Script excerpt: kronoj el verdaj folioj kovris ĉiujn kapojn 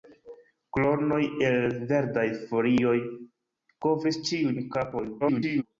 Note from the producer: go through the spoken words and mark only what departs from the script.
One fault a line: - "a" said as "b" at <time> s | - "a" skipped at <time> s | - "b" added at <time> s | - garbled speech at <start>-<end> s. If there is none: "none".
- garbled speech at 5.2-5.6 s